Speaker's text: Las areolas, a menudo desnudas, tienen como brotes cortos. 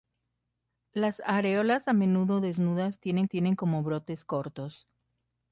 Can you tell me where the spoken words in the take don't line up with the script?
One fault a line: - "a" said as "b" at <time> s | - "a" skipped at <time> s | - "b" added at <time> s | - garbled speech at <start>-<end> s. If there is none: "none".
- "tienen" added at 3.2 s